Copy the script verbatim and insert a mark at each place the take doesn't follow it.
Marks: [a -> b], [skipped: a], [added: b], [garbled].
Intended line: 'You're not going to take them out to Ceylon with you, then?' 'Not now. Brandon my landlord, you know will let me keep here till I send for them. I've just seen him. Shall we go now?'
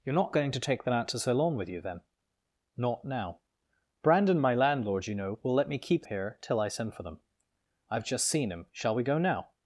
'You're not going to take them out to Ceylon with you, then?' 'Not now. Brandon my landlord, you know will let me keep here till I send for them. I've just seen him. Shall we go now?'